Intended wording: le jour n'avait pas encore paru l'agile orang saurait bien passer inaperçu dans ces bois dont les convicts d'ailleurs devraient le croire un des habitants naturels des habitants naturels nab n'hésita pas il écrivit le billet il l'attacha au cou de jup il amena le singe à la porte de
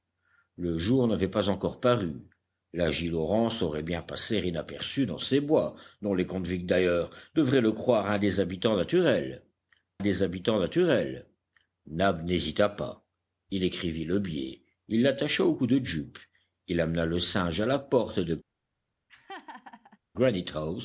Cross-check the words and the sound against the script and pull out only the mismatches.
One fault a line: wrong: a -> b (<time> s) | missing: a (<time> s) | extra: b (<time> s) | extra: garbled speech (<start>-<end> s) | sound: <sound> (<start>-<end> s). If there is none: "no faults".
sound: laugh (19.1-20.0 s)